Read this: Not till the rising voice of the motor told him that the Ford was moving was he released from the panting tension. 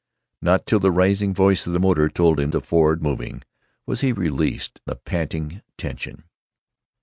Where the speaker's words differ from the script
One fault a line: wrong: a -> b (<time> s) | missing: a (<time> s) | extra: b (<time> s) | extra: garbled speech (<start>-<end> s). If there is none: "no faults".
missing: that (2.5 s)
missing: was (3.0 s)
missing: from (4.8 s)